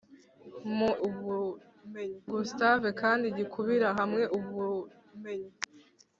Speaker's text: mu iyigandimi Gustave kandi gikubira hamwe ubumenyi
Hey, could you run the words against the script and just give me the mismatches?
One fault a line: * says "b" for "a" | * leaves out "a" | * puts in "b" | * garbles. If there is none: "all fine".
* says "ubumenyi" for "iyigandimi"